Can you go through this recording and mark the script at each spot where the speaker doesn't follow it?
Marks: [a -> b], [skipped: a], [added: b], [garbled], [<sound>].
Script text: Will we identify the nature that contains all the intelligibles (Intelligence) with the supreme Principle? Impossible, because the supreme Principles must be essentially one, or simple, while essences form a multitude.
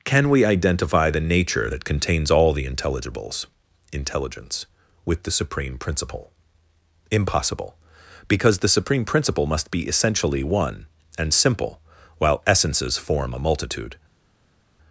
[Will -> Can] we identify the nature that contains all the intelligibles (Intelligence) with the supreme Principle? Impossible, because the supreme [Principles -> Principle] must be essentially one, [or -> and] simple, while essences form a multitude.